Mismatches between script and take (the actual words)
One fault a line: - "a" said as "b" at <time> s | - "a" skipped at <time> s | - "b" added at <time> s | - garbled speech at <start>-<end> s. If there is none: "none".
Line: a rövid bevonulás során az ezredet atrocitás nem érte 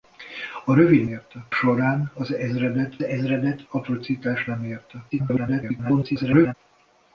- "bevonulás" said as "érte" at 1.0 s
- "ezredet" added at 3.0 s
- garbled speech at 5.1-6.5 s